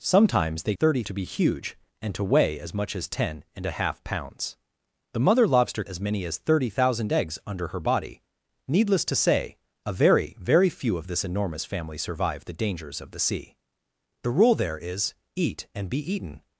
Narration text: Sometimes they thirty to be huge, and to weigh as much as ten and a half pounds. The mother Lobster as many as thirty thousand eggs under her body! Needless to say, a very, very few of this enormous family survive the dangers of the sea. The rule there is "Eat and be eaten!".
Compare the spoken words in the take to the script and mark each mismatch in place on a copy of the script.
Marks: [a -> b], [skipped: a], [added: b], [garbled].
Sometimes they thirty to be huge, and to weigh as much as ten and a half pounds. The mother Lobster as many as thirty thousand eggs under her body! Needless to say, a very, very few of this enormous family survive the dangers of the sea. The rule there is "Eat and be eaten!".